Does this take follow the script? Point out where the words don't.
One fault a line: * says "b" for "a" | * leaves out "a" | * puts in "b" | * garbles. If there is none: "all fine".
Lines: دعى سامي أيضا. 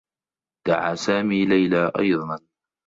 * puts in "ليلى"